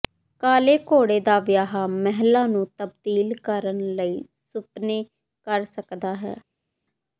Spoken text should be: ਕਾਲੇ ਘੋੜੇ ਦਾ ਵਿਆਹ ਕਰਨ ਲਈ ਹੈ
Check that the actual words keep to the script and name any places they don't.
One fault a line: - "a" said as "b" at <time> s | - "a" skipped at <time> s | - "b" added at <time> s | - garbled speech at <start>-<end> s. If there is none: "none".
- "ਮਹਿਲਾ ਨੂੰ ਤਬਦੀਲ" added at 1.9 s
- "ਸੁਪਨੇ ਕਰ ਸਕਦਾ" added at 4.5 s